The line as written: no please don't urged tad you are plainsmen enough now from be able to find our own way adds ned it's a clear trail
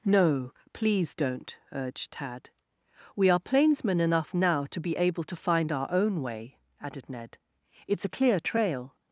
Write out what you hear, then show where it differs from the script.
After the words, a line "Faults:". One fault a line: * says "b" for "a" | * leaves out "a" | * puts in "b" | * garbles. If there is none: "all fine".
no please don't urged tad we are plainsmen enough now to be able to find our own way added ned it's a clear trail
Faults:
* says "we" for "you"
* says "to" for "from"
* says "added" for "adds"